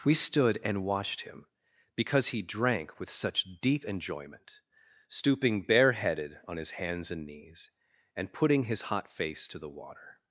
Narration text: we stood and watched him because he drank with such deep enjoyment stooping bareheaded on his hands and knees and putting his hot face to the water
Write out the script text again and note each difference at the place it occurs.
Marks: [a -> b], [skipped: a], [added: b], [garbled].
we stood and watched him because he drank with such deep enjoyment stooping bareheaded on his hands and knees and putting his hot face to the water